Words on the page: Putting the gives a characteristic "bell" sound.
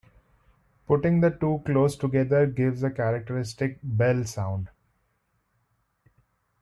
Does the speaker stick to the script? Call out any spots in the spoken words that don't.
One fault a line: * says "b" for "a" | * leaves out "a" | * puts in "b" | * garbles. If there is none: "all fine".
* puts in "two close together"